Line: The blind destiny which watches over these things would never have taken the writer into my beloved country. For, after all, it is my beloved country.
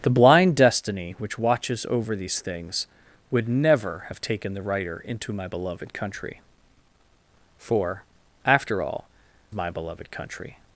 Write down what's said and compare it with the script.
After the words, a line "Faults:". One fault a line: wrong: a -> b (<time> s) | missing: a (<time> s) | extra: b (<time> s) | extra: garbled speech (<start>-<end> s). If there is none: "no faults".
The blind destiny which watches over these things would never have taken the writer into my beloved country. For, after all, my beloved country.
Faults:
missing: it is (9.0 s)